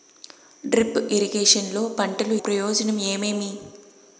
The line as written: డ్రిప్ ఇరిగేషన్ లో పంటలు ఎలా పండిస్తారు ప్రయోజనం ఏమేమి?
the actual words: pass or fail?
fail